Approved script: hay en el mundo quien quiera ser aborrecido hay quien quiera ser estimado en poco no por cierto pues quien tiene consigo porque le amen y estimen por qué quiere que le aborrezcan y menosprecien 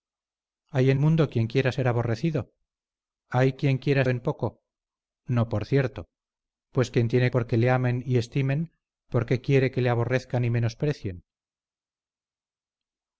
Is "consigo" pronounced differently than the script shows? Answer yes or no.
yes